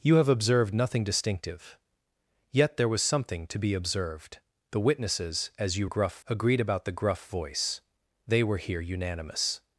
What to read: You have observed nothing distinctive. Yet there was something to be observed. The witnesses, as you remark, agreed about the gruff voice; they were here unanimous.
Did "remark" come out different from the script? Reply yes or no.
yes